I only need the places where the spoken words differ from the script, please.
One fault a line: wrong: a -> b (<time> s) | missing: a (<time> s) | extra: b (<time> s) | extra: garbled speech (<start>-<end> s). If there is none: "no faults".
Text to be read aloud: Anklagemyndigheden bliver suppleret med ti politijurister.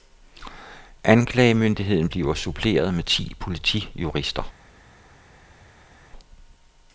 no faults